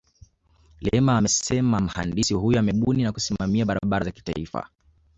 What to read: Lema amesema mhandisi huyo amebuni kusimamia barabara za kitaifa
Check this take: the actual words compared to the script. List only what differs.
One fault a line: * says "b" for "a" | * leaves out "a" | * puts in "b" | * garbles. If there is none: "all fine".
* puts in "na"